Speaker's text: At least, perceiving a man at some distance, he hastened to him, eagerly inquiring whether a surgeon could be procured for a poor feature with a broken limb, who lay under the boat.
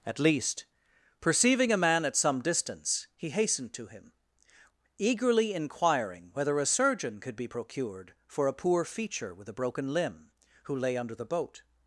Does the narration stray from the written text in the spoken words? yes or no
no